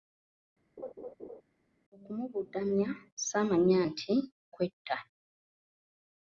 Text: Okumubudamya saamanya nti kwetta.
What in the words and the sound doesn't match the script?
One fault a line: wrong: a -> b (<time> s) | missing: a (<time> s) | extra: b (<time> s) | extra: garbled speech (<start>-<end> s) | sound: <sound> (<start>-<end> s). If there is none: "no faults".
sound: laugh (0.8-1.4 s)